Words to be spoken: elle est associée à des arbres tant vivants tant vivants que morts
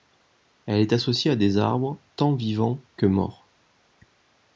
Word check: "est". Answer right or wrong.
right